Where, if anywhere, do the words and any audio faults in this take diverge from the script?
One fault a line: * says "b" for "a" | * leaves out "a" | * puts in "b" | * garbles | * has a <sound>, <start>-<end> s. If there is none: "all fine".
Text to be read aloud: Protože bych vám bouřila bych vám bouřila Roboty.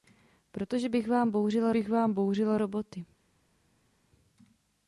all fine